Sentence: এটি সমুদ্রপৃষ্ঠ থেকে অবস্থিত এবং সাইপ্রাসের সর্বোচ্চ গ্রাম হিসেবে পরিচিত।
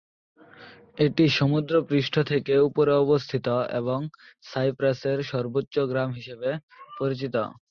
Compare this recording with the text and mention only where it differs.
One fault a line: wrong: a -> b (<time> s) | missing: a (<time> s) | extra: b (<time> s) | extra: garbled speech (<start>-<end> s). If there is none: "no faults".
extra: উপরে (2.7 s)